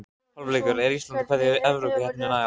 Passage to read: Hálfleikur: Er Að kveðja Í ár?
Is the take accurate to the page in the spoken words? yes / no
no